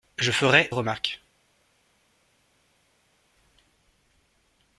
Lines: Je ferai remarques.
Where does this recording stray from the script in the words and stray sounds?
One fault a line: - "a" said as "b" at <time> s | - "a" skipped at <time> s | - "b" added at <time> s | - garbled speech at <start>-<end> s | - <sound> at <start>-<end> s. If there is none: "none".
none